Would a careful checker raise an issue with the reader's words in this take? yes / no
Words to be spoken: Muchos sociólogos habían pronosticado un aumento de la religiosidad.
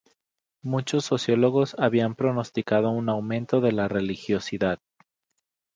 no